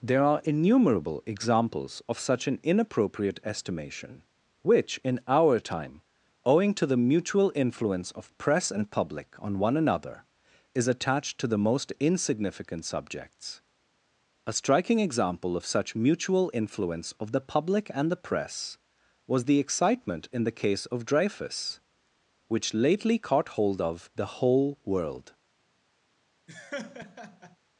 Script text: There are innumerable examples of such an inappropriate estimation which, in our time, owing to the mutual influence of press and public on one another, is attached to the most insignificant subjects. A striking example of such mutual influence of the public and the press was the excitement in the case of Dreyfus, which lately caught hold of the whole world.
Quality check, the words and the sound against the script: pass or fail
fail